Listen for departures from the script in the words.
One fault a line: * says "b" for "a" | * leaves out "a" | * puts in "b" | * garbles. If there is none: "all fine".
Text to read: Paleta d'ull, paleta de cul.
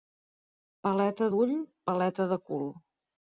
all fine